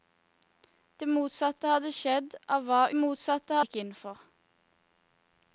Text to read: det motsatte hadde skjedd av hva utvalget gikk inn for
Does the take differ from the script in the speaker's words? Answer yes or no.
yes